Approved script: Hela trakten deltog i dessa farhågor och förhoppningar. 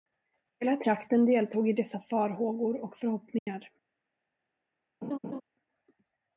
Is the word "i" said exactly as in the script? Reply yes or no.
yes